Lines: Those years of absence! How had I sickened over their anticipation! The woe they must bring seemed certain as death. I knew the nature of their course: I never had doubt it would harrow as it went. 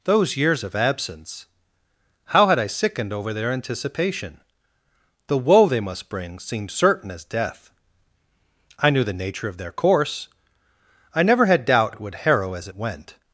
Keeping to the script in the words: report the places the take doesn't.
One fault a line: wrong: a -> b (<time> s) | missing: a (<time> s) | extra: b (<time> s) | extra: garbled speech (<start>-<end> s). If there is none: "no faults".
no faults